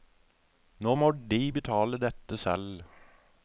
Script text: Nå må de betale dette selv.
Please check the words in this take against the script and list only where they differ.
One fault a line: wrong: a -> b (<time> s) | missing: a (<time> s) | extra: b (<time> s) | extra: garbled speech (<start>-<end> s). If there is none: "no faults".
no faults